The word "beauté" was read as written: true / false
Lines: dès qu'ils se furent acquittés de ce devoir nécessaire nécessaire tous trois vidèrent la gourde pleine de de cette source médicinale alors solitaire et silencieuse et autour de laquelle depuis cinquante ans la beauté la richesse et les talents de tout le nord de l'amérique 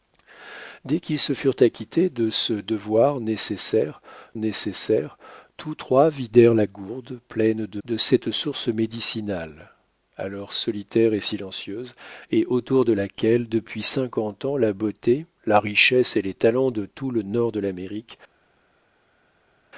true